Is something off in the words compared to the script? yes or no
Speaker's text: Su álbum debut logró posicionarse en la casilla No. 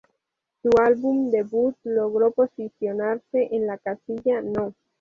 no